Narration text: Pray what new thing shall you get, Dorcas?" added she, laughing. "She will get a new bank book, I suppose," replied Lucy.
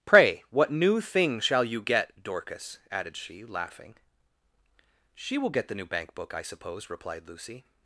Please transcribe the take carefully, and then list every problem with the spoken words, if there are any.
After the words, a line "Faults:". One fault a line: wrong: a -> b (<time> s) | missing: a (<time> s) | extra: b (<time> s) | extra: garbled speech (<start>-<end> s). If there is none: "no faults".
Pray what new thing shall you get, Dorcas?" added she, laughing. "She will get the new bank book, I suppose," replied Lucy.
Faults:
wrong: a -> the (5.7 s)